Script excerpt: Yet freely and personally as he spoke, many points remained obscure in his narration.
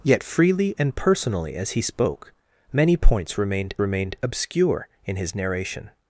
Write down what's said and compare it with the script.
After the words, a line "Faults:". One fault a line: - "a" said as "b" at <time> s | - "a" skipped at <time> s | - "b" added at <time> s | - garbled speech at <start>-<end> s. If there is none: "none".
Yet freely and personally as he spoke, many points remained remained obscure in his narration.
Faults:
- "remained" added at 3.8 s